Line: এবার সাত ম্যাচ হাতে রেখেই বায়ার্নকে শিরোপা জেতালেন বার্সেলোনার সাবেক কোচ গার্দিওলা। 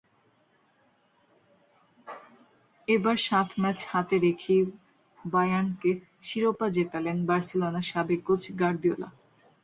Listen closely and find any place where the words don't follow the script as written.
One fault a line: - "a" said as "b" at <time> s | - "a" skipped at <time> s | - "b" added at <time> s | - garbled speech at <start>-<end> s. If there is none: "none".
none